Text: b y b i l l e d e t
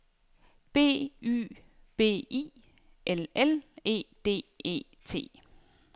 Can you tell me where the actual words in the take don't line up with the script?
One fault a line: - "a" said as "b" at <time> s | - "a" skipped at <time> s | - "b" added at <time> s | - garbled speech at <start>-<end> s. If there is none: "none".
none